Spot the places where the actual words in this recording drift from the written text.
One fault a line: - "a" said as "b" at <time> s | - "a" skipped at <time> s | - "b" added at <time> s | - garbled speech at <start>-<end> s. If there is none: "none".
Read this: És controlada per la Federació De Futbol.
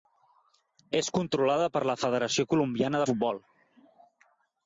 - "Colombiana" added at 2.5 s